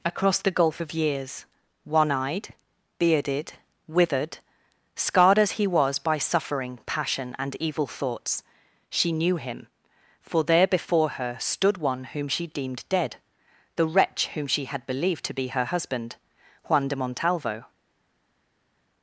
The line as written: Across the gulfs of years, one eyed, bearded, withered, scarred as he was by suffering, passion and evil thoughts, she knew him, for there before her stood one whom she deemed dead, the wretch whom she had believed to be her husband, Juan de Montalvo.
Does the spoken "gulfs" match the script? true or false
false